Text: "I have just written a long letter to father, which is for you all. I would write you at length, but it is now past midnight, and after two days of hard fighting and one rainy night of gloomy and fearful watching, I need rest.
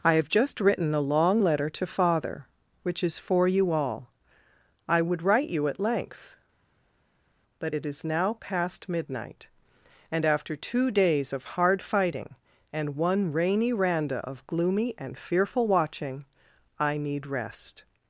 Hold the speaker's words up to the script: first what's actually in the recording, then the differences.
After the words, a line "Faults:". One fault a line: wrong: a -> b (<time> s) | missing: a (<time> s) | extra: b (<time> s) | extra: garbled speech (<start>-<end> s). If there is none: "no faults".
"I have just written a long letter to father, which is for you all. I would write you at length, but it is now past midnight, and after two days of hard fighting and one rainy randa of gloomy and fearful watching, I need rest.
Faults:
wrong: night -> randa (13.7 s)